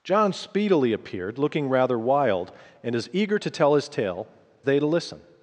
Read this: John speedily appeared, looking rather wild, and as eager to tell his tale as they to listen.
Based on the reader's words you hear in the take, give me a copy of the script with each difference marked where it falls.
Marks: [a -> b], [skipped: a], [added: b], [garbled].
John speedily appeared, looking rather wild, and as eager to tell his tale [skipped: as] they to listen.